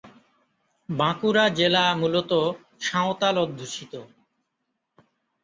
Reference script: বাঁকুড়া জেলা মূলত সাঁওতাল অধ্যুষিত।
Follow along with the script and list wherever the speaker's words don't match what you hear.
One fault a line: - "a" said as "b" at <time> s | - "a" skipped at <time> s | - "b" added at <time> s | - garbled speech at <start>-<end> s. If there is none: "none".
none